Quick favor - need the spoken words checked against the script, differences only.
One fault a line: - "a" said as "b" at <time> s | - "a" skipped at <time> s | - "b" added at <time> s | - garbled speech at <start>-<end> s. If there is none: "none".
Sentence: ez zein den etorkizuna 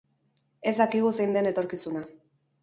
- "dakigu" added at 0.8 s